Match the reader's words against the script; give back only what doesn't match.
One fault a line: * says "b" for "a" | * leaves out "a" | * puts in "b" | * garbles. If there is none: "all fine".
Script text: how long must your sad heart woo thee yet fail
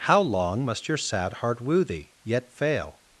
all fine